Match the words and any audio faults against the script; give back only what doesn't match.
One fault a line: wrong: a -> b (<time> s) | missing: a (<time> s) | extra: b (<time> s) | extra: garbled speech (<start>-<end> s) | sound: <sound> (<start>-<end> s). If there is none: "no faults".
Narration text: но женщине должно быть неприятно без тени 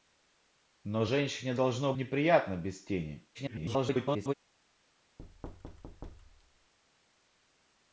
missing: быть (1.9 s)
extra: garbled speech (3.3-4.3 s)
sound: thud (5.2-6.7 s)